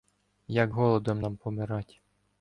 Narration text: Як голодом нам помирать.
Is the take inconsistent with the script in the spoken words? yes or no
no